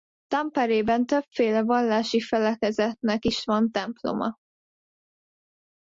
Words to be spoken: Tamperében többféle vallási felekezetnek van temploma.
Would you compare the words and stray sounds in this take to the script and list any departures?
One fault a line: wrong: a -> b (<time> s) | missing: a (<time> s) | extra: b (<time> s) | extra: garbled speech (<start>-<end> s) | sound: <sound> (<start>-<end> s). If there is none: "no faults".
extra: is (3.2 s)